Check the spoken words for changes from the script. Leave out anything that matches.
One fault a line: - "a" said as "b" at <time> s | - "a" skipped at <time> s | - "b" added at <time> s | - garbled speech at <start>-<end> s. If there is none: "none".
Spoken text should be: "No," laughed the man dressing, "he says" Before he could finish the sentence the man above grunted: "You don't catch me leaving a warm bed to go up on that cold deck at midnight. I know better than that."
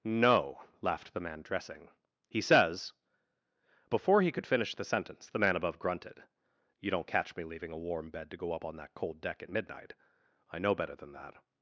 none